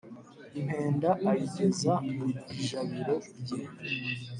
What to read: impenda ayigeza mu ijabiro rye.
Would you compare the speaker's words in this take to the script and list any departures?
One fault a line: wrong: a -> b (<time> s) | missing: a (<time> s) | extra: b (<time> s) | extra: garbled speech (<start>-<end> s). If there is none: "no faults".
no faults